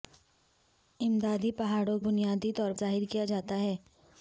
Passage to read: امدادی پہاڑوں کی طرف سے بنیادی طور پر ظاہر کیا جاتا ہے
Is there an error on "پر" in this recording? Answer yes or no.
yes